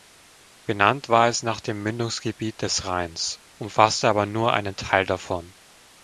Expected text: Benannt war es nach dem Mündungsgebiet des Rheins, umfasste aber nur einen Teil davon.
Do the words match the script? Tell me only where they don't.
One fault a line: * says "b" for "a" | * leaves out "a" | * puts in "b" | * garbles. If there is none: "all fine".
all fine